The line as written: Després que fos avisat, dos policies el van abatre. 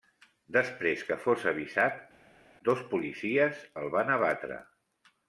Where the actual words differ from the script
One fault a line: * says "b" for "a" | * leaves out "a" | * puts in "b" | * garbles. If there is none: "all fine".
all fine